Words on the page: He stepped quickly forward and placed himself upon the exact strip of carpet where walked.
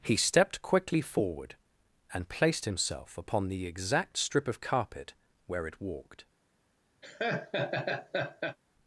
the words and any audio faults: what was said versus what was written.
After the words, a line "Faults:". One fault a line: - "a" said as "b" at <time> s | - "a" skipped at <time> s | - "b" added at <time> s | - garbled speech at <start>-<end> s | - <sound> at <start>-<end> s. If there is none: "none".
He stepped quickly forward and placed himself upon the exact strip of carpet where it walked.
Faults:
- "it" added at 5.7 s
- laugh at 7.0-8.6 s